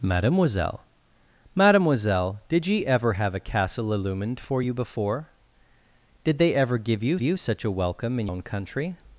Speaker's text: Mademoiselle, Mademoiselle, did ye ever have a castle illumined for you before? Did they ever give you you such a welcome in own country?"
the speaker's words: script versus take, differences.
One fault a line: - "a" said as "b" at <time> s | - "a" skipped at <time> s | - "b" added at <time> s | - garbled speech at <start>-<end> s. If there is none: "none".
none